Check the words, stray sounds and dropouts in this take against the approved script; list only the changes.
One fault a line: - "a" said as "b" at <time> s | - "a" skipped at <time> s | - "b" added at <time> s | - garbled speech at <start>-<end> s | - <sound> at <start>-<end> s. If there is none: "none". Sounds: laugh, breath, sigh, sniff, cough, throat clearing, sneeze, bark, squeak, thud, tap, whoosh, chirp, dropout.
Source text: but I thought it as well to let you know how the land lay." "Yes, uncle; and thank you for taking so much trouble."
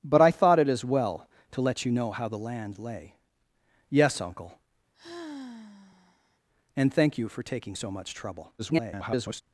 - sigh at 4.9-6.4 s
- garbled speech at 8.6-9.4 s